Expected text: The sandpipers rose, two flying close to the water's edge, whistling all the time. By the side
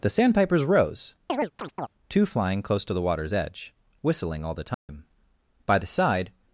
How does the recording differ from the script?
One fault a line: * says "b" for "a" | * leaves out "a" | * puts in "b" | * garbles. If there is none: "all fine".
all fine